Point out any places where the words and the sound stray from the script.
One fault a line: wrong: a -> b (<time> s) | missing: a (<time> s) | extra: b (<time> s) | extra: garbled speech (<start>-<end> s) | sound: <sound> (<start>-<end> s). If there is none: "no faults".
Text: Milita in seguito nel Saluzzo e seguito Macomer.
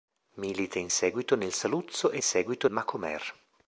no faults